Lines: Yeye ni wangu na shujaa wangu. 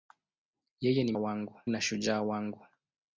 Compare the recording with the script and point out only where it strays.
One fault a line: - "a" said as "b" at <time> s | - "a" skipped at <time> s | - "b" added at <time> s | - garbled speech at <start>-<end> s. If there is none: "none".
none